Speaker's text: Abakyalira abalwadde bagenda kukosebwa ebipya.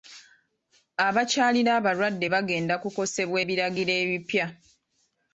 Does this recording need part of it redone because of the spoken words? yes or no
yes